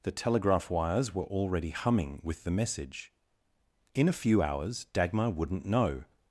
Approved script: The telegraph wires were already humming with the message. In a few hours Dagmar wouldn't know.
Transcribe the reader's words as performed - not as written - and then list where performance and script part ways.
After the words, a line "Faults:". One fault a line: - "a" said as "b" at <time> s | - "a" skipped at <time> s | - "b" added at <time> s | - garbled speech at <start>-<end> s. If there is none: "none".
The telegraph wires were already humming with the message. In a few hours Dagmar wouldn't know.
Faults:
none